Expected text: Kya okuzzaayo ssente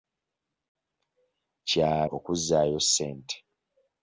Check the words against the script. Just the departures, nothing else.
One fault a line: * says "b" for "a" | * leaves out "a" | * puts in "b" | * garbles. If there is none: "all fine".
all fine